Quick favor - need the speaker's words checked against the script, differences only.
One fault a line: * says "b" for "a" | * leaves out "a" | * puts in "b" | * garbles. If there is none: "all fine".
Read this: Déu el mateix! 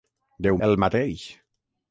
all fine